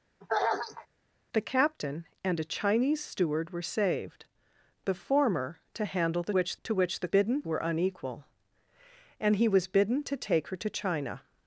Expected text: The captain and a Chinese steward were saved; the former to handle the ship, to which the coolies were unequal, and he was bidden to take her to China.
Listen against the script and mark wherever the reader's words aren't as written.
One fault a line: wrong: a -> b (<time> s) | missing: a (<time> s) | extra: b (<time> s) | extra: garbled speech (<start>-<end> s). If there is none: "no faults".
wrong: ship -> which (6.3 s)
wrong: coolies -> bidden (7.1 s)